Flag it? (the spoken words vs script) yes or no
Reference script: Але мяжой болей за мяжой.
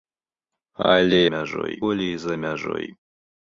no